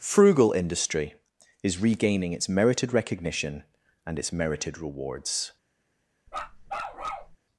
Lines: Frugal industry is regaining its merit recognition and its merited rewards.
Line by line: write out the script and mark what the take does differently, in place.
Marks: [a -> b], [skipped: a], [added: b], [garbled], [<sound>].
Frugal industry is regaining its [merit -> merited] recognition and its merited rewards. [bark]